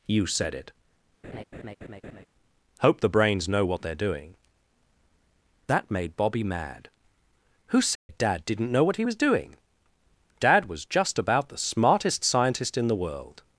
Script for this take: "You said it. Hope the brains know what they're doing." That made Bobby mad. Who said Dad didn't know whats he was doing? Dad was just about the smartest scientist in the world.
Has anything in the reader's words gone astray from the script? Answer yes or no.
yes